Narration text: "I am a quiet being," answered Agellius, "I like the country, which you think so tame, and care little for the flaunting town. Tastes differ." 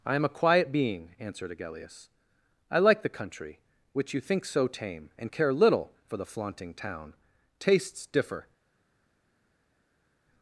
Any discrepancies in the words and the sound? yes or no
no